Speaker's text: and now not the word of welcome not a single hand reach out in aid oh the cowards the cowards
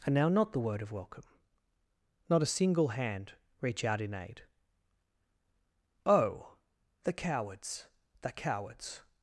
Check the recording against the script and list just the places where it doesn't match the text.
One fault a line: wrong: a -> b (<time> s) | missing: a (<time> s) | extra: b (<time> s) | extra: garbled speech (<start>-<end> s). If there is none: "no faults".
no faults